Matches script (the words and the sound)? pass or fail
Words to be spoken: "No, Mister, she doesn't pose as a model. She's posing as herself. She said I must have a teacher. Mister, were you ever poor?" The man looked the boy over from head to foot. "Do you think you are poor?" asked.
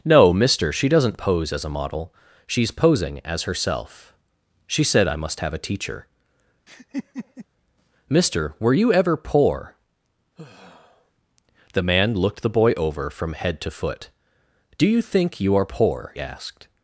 fail